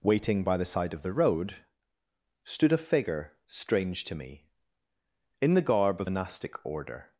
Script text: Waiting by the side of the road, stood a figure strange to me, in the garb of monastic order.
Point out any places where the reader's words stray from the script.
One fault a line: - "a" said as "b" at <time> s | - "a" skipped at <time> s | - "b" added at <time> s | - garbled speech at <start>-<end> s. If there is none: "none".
none